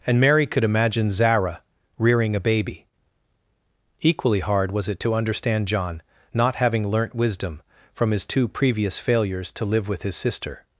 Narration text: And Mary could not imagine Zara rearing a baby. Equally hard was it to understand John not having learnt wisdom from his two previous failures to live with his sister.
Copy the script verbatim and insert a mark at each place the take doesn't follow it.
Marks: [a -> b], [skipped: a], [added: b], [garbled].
And Mary could [skipped: not] imagine Zara rearing a baby. Equally hard was it to understand John not having learnt wisdom from his two previous failures to live with his sister.